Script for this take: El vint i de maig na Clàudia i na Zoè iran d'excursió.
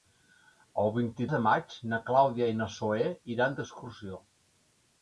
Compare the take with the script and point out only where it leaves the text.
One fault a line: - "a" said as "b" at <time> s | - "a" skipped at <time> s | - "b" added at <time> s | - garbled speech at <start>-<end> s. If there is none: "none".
none